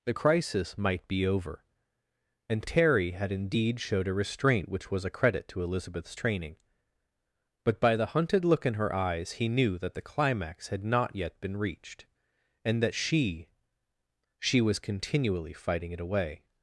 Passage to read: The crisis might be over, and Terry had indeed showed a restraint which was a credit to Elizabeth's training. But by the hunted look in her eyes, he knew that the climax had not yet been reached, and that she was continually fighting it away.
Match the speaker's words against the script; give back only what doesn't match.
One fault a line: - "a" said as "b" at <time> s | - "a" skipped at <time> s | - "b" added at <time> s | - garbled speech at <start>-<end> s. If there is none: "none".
- "she" added at 14.4 s